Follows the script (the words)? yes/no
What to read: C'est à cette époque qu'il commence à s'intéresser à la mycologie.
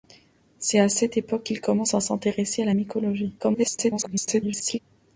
no